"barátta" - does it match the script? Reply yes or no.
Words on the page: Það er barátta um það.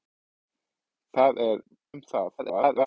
no